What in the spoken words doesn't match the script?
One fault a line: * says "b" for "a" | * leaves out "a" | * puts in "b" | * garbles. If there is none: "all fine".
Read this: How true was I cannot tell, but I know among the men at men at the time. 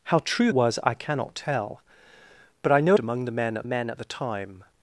all fine